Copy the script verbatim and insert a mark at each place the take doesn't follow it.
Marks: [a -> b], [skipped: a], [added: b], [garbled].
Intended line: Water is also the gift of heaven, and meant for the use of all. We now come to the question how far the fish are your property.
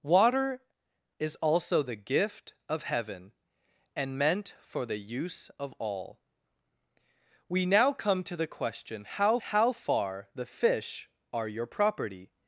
Water is also the gift of heaven, and meant for the use of all. We now come to the question how [added: how] far the fish are your property.